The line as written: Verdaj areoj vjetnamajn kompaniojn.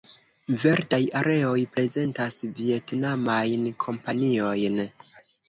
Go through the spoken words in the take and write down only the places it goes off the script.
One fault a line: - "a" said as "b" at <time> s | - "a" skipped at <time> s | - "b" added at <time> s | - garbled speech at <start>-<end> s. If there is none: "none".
- "prezentas" added at 1.7 s